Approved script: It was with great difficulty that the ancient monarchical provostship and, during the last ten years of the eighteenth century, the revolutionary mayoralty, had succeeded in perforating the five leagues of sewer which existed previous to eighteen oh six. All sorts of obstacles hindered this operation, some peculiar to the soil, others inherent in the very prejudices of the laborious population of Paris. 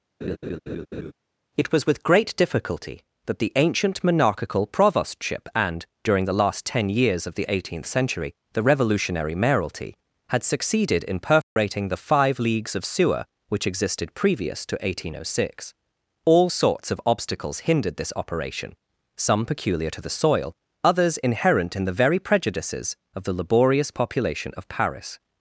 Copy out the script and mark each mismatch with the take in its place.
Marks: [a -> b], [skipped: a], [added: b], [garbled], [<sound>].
[laugh] It was with great difficulty that the ancient monarchical provostship and, during the last ten years of the eighteenth century, the revolutionary mayoralty, had succeeded in perforating [dropout] the five leagues of sewer which existed previous to eighteen oh six. All sorts of obstacles hindered this operation, some peculiar to the soil, others inherent in the very prejudices of the laborious population of Paris.